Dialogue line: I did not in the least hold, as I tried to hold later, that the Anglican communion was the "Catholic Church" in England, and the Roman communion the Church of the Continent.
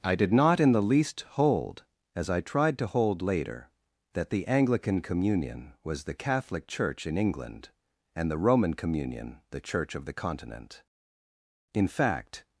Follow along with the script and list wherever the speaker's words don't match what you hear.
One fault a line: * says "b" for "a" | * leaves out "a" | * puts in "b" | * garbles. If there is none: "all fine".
* puts in "In fact"